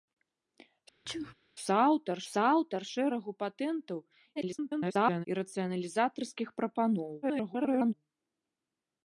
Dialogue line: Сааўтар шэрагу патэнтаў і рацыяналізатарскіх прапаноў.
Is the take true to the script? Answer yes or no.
no